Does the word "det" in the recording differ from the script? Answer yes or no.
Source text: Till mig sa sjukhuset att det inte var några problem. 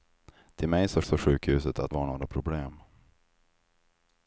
yes